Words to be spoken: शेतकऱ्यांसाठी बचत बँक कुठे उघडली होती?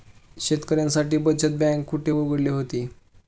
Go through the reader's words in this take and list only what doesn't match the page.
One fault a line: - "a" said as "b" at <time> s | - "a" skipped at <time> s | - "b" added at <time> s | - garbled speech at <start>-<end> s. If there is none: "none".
none